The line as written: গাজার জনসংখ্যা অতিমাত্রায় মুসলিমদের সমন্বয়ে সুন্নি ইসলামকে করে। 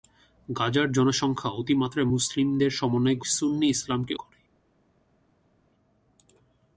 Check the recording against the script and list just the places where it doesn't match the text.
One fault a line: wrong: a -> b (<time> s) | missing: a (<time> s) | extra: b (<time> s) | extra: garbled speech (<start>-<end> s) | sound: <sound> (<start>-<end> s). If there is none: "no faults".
no faults